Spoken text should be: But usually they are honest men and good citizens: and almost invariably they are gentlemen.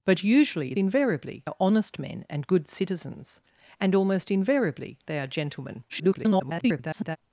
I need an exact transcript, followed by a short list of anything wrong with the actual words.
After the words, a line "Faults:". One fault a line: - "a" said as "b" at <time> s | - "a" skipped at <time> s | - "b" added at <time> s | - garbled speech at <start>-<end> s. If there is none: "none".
But usually invariably are honest men and good citizens: and almost invariably they are gentlemen. [garbled]
Faults:
- "they" said as "invariably" at 0.8 s
- garbled speech at 5.9-7.2 s